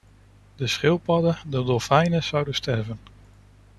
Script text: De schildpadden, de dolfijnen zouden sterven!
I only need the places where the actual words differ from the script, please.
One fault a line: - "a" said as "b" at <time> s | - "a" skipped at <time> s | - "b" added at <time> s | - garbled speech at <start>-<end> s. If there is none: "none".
none